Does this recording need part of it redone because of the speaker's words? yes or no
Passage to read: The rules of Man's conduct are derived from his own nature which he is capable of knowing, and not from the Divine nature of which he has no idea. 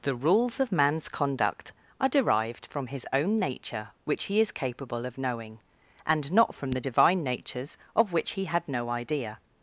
yes